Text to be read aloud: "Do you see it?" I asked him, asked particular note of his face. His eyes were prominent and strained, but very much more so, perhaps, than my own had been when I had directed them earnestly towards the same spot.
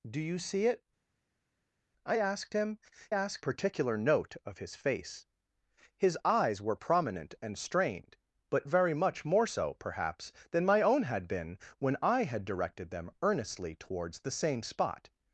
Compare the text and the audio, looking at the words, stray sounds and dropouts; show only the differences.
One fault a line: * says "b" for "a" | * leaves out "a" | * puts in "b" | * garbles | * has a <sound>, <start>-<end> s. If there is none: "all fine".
all fine